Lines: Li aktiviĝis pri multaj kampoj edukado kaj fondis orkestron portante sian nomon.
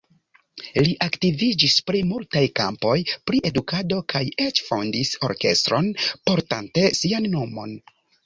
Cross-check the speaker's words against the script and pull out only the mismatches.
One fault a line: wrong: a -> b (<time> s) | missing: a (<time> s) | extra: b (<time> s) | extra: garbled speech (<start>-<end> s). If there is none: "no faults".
extra: pri (3.3 s)
extra: eĉ (4.5 s)